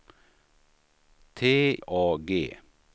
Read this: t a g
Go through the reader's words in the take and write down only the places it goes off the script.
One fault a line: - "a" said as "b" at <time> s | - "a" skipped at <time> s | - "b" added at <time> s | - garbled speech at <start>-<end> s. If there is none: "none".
none